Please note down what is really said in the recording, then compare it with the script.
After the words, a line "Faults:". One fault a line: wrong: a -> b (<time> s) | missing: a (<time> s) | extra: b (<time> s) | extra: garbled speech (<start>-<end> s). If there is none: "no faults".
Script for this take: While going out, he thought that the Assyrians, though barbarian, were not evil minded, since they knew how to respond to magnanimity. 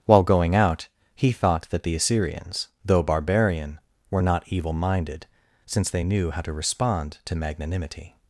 While going out, he thought that the Assyrians, though barbarian, were not evil minded, since they knew how to respond to magnanimity.
Faults:
no faults